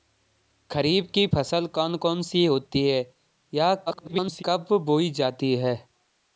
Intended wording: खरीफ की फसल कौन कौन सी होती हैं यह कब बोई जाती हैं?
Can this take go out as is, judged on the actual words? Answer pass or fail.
fail